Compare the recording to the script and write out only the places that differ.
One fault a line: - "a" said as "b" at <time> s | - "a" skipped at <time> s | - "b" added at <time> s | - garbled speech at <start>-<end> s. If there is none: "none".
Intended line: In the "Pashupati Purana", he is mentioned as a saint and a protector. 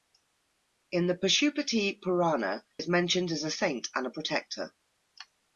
- "he" skipped at 2.6 s